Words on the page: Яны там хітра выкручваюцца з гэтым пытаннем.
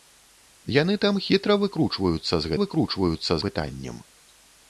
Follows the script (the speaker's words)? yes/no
no